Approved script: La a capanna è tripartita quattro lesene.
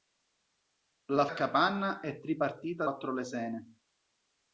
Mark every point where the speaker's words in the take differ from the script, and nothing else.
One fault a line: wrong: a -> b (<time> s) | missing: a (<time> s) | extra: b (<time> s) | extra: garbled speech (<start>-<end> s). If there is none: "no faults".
no faults